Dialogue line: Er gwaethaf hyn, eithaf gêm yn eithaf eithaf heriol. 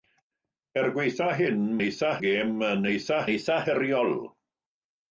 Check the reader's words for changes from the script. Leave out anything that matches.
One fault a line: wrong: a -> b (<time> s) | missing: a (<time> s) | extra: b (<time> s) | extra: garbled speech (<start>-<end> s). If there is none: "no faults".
no faults